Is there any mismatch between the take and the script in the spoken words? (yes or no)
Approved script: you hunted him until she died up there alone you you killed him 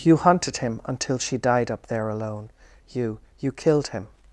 no